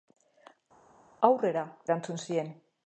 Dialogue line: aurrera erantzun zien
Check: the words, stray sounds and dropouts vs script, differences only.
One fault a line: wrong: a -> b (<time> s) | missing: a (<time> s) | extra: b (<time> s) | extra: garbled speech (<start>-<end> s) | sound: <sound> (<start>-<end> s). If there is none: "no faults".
no faults